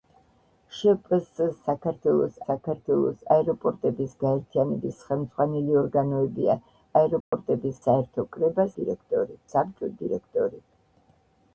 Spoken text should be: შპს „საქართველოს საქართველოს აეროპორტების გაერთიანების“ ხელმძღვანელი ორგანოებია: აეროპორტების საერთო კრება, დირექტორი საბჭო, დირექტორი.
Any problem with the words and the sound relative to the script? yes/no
yes